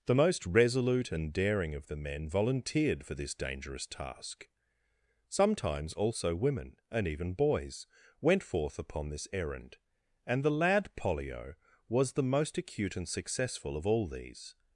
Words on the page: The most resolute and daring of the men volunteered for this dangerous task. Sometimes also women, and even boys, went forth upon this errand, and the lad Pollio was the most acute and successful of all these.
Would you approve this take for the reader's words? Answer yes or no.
yes